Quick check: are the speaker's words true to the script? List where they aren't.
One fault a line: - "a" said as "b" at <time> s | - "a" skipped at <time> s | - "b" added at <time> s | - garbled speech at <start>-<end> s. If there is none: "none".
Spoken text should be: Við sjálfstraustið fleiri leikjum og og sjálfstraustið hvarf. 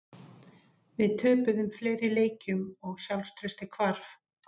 - "sjálfstraustið" said as "töpuðum" at 1.2 s
- "og" skipped at 3.0 s